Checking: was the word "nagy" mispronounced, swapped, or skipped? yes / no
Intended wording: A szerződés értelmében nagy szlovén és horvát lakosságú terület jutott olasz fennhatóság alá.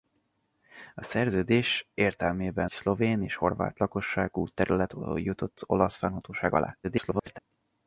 yes